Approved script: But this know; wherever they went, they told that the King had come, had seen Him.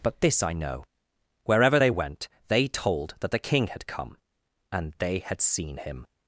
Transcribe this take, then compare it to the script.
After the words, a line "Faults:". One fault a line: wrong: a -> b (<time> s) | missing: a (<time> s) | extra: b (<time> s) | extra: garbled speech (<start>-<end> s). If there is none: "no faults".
But this I know; wherever they went, they told that the King had come, and they had seen Him.
Faults:
extra: I (0.4 s)
extra: and they (4.7 s)